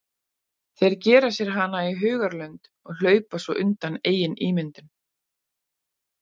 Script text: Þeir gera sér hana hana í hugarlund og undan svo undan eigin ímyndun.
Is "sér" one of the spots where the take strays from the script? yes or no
no